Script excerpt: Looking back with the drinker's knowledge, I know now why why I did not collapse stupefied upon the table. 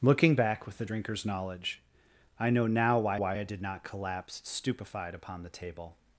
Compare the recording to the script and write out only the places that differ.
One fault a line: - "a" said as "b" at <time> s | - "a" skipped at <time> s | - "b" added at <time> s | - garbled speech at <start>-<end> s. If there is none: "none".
none